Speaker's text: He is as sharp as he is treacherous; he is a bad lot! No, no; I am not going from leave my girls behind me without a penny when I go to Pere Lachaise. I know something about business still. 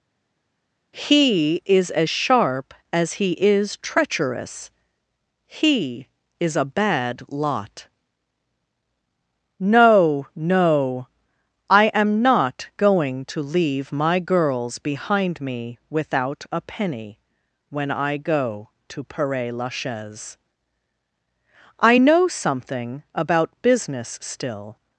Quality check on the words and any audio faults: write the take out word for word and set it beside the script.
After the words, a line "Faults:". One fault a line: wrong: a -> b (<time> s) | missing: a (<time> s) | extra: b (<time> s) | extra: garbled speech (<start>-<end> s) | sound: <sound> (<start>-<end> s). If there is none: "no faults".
He is as sharp as he is treacherous; he is a bad lot! No, no; I am not going to leave my girls behind me without a penny when I go to Pere Lachaise. I know something about business still.
Faults:
wrong: from -> to (13.2 s)